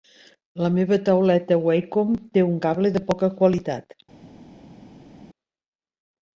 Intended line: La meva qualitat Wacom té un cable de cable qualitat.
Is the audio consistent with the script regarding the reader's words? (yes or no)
no